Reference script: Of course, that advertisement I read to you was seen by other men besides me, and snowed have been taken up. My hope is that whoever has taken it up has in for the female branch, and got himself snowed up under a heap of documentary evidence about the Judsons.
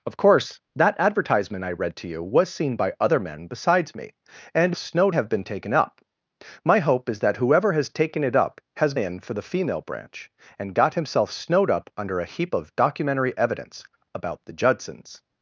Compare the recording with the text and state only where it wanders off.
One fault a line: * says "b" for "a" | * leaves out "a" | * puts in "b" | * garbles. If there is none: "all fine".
all fine